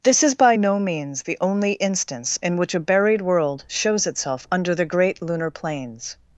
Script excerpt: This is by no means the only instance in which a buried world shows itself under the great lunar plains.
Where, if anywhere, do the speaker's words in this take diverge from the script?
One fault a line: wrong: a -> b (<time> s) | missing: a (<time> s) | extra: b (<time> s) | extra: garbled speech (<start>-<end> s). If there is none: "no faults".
no faults